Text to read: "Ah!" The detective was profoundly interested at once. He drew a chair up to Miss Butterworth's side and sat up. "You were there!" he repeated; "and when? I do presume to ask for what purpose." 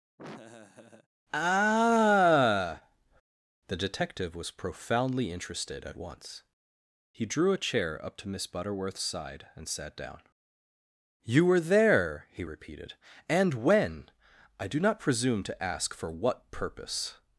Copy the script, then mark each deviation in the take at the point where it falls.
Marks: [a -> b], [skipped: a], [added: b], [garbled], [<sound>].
[laugh] "Ah!" The detective was profoundly interested at once. He drew a chair up to Miss Butterworth's side and sat [up. -> down] "You were there!" he repeated; "and when? I do [added: not] presume to ask for what purpose."